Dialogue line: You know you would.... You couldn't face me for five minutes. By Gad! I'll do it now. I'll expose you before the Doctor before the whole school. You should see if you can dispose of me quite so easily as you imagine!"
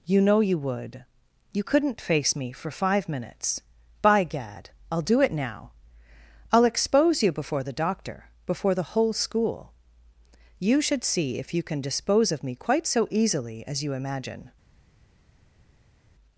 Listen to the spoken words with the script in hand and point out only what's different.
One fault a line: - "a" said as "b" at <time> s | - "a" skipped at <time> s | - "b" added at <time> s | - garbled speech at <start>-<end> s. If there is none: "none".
none